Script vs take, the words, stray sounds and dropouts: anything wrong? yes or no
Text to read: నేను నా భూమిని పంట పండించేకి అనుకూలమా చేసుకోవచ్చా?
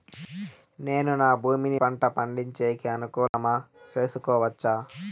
yes